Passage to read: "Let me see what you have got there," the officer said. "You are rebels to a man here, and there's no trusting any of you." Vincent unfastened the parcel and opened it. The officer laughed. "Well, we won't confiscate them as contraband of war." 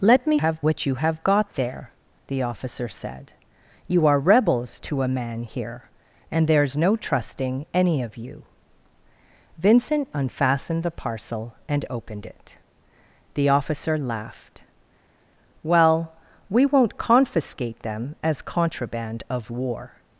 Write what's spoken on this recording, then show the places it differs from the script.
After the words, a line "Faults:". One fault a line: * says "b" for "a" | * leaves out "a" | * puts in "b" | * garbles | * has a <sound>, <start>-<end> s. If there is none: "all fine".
"Let me have what you have got there," the officer said. "You are rebels to a man here, and there's no trusting any of you." Vincent unfastened the parcel and opened it. The officer laughed. "Well, we won't confiscate them as contraband of war."
Faults:
* says "have" for "see"